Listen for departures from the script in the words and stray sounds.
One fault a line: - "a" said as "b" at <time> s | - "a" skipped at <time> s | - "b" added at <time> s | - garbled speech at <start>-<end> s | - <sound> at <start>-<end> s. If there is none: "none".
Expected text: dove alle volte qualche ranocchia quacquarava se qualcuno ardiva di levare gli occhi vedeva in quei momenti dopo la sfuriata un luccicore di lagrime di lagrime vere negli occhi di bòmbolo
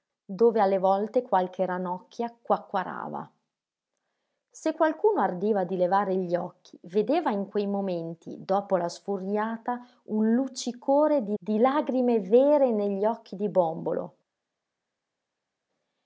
- "lagrime" skipped at 11.4 s